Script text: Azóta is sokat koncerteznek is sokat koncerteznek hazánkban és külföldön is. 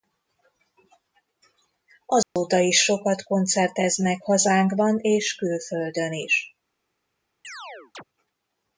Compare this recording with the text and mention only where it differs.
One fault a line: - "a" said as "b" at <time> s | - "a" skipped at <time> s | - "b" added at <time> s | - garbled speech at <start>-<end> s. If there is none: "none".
- "is sokat koncerteznek" skipped at 4.2 s